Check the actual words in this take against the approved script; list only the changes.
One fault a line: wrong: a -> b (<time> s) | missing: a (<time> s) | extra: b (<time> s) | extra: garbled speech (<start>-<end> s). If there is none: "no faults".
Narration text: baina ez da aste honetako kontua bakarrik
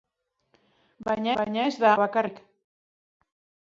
extra: baina (1.4 s)
missing: aste honetako kontua (1.9 s)